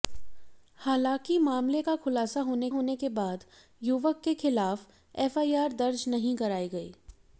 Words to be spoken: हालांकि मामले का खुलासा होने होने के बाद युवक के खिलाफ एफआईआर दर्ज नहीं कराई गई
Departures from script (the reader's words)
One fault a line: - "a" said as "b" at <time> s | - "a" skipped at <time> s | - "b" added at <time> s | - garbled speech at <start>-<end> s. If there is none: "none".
none